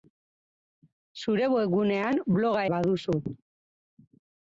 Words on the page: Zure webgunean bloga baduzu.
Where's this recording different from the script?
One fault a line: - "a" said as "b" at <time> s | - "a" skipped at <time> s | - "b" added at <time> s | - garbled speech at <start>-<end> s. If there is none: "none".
none